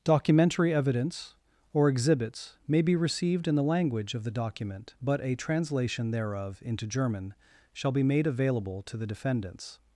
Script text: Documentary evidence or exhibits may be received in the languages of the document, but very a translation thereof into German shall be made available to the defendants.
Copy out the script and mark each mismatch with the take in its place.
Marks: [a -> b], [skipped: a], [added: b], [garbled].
Documentary evidence or exhibits may be received in the [languages -> language] of the document, but [skipped: very] a translation thereof into German shall be made available to the defendants.